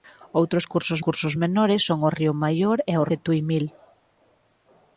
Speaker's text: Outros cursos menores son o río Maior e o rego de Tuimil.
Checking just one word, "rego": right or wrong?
wrong